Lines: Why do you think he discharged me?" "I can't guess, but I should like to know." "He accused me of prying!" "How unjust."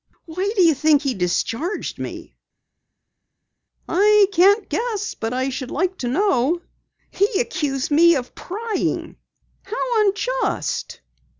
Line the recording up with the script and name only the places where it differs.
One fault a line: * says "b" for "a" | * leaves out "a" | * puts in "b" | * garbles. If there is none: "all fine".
all fine